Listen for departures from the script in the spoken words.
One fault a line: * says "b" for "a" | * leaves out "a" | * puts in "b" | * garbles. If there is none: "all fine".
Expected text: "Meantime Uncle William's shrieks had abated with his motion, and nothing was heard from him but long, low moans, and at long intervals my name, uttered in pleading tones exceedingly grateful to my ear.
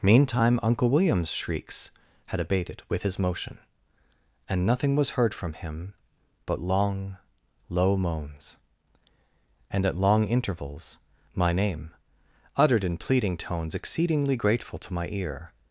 all fine